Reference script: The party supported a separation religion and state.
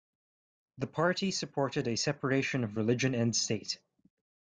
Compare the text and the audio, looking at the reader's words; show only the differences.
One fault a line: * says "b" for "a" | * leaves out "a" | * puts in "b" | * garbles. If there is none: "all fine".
* puts in "of"